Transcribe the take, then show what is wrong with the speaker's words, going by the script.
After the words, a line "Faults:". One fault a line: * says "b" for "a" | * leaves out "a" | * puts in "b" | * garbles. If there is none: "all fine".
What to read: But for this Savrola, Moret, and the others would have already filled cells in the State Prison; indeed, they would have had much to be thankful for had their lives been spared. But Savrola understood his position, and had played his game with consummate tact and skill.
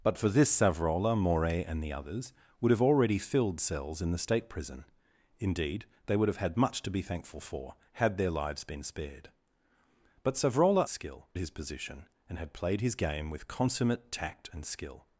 But for this Savrola, Moret, and the others would have already filled cells in the State Prison; indeed, they would have had much to be thankful for had their lives been spared. But Savrola skill his position, and had played his game with consummate tact and skill.
Faults:
* says "skill" for "understood"